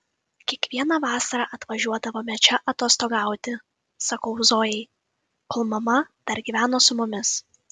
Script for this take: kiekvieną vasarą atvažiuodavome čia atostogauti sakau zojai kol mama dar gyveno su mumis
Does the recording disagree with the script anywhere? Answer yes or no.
no